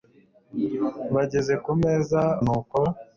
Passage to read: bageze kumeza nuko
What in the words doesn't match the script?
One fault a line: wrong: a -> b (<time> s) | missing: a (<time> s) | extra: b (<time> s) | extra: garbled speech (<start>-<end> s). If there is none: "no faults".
no faults